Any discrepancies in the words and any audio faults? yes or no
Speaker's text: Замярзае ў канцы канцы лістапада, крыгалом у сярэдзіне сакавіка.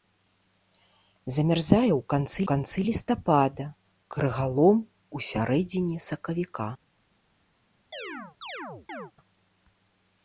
yes